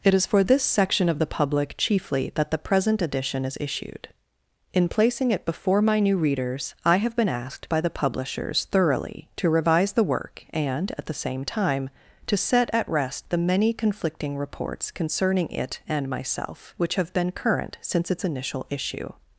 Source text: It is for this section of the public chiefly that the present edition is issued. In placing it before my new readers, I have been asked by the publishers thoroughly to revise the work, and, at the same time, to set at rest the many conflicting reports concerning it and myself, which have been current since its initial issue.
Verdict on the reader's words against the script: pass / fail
pass